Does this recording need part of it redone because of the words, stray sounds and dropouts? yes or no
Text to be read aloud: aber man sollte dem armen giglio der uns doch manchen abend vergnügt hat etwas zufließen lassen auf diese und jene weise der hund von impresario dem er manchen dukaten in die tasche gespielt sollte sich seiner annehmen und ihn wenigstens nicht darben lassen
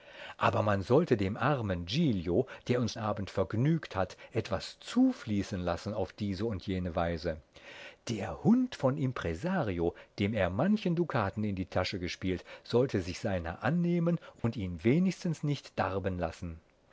yes